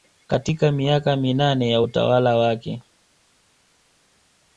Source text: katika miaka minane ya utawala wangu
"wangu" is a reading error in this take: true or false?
true